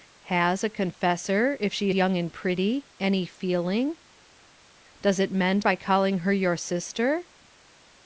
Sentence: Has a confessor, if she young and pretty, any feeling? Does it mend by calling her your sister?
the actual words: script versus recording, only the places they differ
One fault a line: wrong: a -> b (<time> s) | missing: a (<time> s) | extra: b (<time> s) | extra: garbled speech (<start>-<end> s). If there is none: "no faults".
no faults